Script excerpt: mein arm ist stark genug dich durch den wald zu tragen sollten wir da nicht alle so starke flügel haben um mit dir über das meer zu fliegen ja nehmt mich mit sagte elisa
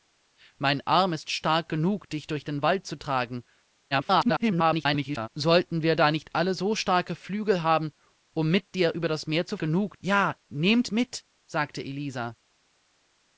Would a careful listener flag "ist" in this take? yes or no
no